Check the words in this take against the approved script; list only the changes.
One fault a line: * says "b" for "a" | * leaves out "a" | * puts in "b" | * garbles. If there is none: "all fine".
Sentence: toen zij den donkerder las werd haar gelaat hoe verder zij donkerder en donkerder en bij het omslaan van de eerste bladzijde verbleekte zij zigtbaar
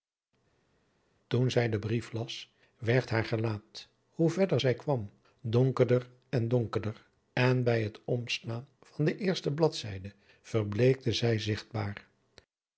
* says "brief" for "donkerder"
* puts in "kwam"